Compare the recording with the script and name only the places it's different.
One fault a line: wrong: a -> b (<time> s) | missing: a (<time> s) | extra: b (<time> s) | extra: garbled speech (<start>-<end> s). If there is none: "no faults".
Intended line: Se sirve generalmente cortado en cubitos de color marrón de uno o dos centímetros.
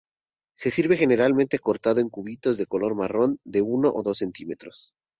no faults